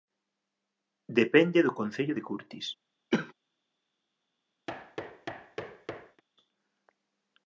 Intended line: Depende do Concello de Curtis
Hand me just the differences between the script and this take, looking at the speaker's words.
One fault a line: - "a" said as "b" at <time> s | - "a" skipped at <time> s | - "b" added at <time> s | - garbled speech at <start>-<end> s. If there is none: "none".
none